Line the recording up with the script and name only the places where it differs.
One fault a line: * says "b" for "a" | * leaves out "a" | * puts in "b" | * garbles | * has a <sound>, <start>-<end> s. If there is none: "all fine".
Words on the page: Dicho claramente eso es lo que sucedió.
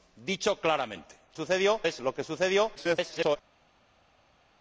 * says "sucedió" for "eso"
* garbles